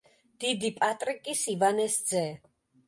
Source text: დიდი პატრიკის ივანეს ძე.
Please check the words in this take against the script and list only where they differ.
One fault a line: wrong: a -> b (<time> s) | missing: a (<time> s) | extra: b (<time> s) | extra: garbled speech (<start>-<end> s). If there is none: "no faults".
no faults